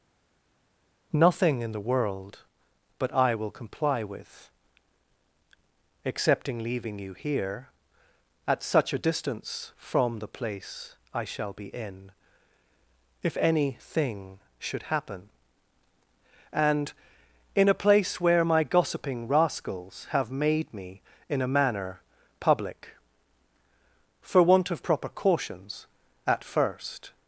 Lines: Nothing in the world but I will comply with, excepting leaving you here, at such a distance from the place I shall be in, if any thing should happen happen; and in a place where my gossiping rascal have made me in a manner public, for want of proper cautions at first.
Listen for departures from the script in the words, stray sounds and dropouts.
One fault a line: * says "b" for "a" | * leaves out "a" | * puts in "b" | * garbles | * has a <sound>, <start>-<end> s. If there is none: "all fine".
* leaves out "happen"
* says "rascals" for "rascal"